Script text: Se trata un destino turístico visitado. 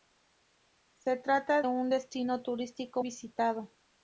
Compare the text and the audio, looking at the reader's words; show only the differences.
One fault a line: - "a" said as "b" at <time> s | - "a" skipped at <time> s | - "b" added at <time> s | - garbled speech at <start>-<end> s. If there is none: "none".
none